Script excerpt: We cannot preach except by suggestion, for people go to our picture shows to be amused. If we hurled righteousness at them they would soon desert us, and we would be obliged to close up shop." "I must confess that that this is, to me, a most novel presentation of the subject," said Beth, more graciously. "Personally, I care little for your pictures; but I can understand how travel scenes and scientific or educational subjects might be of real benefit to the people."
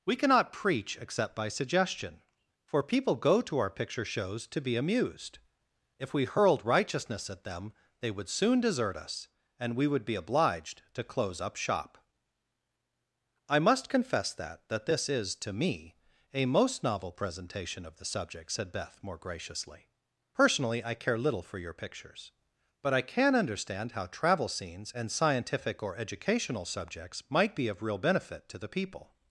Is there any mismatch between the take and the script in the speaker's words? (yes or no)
no